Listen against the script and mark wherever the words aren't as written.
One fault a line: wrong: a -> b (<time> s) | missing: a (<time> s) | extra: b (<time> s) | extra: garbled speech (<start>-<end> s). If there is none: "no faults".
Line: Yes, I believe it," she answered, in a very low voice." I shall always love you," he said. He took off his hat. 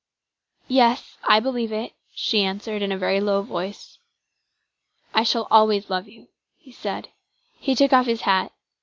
no faults